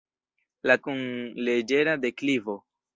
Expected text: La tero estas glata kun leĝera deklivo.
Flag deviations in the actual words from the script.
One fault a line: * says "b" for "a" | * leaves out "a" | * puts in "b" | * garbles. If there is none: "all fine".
* leaves out "tero estas glata"